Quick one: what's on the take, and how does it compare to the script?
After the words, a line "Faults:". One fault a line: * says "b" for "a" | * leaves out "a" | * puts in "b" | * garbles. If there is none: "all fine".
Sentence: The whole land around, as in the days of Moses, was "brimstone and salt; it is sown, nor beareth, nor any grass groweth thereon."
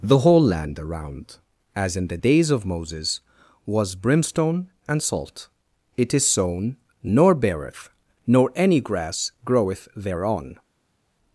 The whole land around, as in the days of Moses, was "brimstone and salt; it is sown, nor beareth, nor any grass groweth thereon."
Faults:
all fine